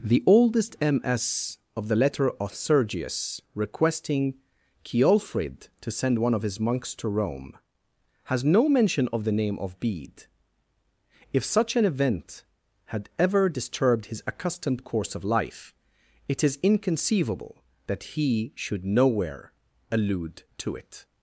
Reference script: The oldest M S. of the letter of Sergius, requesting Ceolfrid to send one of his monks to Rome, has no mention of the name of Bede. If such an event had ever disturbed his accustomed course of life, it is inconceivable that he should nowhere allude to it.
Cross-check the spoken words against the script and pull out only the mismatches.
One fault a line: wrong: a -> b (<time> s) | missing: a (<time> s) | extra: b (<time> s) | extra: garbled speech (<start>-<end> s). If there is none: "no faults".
no faults